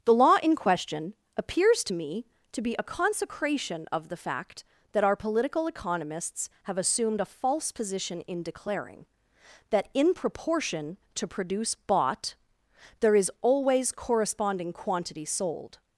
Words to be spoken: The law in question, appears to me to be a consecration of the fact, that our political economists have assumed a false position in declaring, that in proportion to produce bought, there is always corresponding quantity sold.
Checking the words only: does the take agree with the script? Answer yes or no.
yes